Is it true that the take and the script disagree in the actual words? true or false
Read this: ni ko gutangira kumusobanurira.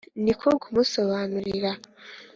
true